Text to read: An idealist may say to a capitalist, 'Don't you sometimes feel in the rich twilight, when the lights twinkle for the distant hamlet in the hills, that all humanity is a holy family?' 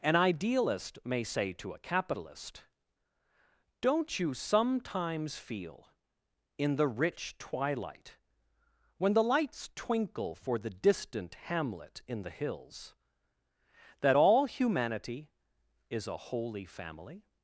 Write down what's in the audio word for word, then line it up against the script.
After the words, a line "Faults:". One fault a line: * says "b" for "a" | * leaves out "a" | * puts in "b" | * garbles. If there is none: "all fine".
An idealist may say to a capitalist, 'Don't you sometimes feel in the rich twilight, when the lights twinkle for the distant hamlet in the hills, that all humanity is a holy family?'
Faults:
all fine